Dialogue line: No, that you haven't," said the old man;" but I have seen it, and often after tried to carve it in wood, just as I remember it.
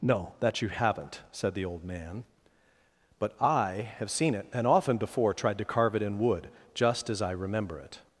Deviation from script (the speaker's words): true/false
true